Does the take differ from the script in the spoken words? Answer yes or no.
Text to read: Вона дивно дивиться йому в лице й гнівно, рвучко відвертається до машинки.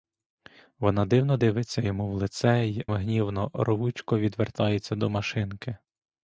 no